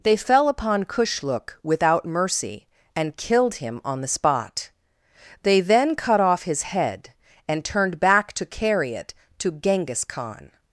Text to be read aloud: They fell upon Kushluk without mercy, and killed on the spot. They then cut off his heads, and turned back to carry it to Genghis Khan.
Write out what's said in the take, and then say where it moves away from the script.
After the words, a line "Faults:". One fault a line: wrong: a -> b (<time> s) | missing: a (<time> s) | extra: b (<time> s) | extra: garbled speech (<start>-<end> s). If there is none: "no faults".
They fell upon Kushluk without mercy, and killed him on the spot. They then cut off his head, and turned back to carry it to Genghis Khan.
Faults:
extra: him (3.5 s)
wrong: heads -> head (6.6 s)